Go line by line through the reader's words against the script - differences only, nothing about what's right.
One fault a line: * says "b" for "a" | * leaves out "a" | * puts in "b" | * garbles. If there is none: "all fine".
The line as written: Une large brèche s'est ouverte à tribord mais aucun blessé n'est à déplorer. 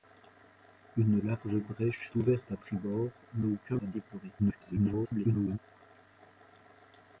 * leaves out "s'est"
* leaves out "blessé n'est"
* garbles